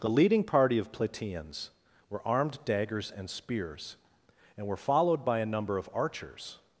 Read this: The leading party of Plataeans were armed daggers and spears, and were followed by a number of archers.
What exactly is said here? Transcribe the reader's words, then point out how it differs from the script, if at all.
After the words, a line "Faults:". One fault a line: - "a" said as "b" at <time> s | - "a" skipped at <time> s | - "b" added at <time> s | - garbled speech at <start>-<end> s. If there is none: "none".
The leading party of Plataeans were armed daggers and spears, and were followed by a number of archers.
Faults:
none